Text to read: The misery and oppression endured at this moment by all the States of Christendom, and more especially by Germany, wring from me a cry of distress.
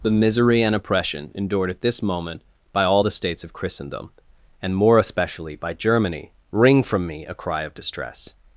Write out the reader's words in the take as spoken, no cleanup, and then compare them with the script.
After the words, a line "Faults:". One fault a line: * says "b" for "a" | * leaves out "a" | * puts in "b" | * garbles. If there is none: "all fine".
The misery and oppression endured at this moment by all the States of Christendom, and more especially by Germany, wring from me a cry of distress.
Faults:
all fine